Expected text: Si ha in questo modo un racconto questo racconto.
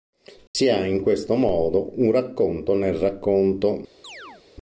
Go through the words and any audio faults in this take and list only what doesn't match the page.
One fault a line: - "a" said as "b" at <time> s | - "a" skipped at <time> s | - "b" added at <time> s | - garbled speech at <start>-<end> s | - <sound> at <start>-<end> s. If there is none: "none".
- dropout at 0.5-0.5 s
- "questo" said as "nel" at 2.7 s
- chirp at 4.0-4.4 s